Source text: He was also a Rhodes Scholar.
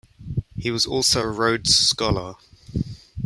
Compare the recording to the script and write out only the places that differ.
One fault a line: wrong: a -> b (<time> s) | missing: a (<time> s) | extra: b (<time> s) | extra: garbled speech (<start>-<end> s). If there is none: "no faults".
no faults